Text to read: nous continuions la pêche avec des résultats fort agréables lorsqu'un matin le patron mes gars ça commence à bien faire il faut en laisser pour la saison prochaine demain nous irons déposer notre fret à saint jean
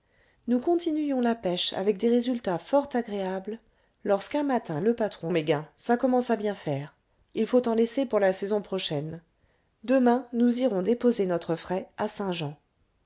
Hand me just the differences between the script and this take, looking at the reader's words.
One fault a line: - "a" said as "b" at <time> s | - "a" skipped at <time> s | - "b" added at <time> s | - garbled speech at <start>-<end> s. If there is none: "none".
none